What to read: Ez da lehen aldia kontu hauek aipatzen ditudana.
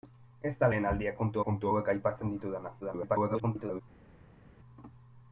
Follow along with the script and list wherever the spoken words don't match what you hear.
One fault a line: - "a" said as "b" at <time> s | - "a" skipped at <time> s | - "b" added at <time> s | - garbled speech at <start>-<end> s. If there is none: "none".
- "kontu" added at 1.4 s
- garbled speech at 2.8-3.8 s